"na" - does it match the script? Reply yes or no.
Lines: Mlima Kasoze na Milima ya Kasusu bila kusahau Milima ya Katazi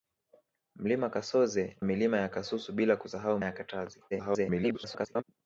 no